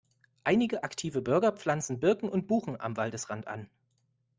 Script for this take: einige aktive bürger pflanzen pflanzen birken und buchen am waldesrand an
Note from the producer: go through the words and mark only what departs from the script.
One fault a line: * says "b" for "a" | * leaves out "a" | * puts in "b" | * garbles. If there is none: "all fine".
* leaves out "pflanzen"